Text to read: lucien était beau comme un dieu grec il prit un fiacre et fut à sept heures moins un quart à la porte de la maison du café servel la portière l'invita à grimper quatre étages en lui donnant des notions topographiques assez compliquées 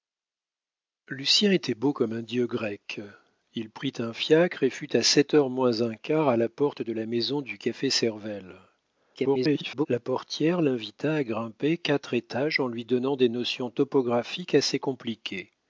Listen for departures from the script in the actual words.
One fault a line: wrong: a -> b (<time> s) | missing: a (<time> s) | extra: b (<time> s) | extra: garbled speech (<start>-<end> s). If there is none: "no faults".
extra: garbled speech (9.1-9.9 s)